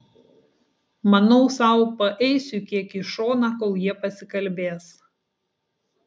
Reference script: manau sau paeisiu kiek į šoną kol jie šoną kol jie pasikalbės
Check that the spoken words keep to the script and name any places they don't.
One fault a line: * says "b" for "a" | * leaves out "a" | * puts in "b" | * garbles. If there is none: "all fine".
* leaves out "šoną kol jie"